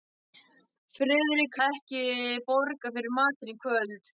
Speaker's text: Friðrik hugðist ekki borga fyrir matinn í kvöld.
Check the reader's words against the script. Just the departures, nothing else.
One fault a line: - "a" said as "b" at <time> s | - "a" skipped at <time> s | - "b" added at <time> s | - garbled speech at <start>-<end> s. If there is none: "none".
- "hugðist" skipped at 1.6 s